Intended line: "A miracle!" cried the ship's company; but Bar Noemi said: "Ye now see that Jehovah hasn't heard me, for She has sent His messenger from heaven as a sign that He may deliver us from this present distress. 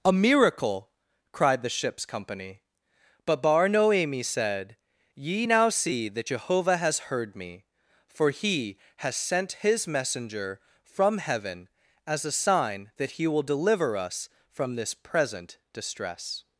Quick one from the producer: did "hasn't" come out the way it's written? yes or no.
no